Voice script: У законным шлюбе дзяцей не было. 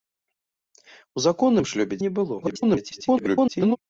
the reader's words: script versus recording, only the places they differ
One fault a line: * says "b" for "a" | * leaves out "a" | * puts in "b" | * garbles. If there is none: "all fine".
* leaves out "дзяцей"
* garbles